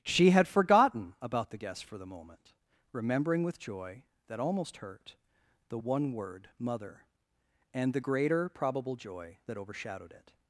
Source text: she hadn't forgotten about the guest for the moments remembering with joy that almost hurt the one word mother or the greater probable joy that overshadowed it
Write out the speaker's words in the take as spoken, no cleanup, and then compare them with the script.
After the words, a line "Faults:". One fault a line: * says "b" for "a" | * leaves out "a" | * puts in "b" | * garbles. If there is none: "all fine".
she had forgotten about the guest for the moment remembering with joy that almost hurt the one word mother and the greater probable joy that overshadowed it
Faults:
* says "had" for "hadn't"
* says "moment" for "moments"
* says "and" for "or"